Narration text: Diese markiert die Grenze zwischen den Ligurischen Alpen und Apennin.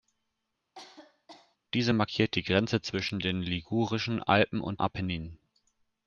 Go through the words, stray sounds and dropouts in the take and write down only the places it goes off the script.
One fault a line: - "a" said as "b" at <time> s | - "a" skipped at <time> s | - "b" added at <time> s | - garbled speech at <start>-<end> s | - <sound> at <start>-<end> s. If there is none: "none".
- cough at 0.8-1.6 s